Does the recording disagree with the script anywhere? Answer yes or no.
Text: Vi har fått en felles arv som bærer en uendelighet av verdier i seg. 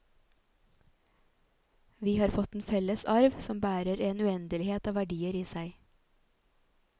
no